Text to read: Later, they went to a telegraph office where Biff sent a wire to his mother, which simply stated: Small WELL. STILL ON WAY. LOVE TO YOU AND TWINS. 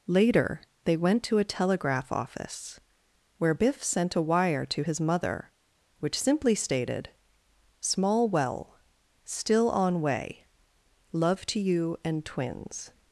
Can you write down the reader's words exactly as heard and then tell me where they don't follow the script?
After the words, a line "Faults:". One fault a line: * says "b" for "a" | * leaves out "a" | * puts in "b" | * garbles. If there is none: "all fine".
Later, they went to a telegraph office where Biff sent a wire to his mother, which simply stated: Small WELL. STILL ON WAY. LOVE TO YOU AND TWINS.
Faults:
all fine